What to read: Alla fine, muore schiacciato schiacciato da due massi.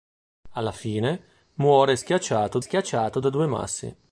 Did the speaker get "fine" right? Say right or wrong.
right